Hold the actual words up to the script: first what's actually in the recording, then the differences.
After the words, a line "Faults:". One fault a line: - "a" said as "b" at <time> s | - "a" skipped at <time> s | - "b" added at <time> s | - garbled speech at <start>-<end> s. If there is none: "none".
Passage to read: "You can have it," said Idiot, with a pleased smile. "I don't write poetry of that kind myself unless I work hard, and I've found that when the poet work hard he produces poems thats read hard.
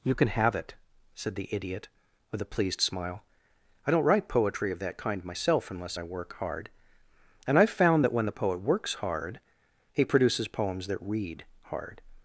"You can have it," said the Idiot, with a pleased smile. "I don't write poetry of that kind myself unless I work hard, and I've found that when the poet works hard he produces poems that read hard.
Faults:
- "the" added at 1.4 s
- "work" said as "works" at 8.6 s
- "thats" said as "that" at 10.9 s